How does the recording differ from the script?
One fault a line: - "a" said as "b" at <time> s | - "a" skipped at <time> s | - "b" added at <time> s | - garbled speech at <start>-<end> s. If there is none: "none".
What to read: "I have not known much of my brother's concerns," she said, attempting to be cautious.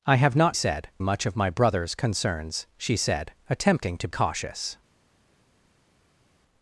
- "known" said as "said" at 0.5 s
- "be" skipped at 4.1 s